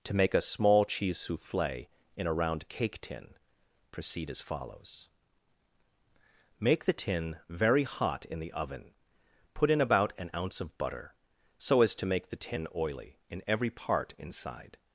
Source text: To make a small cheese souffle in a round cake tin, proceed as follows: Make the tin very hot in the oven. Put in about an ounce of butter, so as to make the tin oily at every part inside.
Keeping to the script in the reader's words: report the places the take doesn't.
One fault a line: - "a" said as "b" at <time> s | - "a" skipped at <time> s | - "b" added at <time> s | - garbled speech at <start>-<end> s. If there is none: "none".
- "at" said as "in" at 13.3 s